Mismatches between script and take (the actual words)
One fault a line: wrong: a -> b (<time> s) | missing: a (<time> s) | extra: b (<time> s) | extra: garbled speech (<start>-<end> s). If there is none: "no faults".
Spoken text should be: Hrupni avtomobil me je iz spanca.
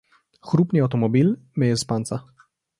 no faults